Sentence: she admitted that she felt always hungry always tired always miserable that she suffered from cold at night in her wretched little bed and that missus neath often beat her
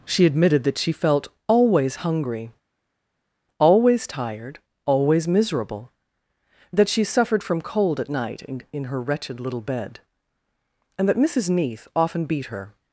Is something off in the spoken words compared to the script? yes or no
yes